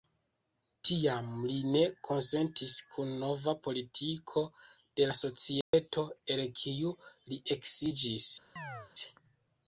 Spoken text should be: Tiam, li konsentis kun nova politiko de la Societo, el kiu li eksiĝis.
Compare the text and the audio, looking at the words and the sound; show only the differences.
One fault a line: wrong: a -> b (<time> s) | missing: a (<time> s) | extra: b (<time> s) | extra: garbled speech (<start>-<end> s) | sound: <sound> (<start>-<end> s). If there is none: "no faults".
extra: ne (1.7 s)
sound: dropout (5.6-5.7 s)
sound: chirp (8.6-8.9 s)